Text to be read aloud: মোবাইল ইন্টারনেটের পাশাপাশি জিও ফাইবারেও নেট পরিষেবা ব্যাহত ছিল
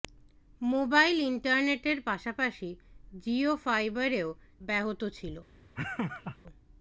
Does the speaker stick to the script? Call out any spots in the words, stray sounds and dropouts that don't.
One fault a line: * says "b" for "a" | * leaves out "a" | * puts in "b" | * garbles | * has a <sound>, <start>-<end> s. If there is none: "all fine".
* leaves out "নেট পরিষেবা"
* has a laugh, 5.8-6.4 s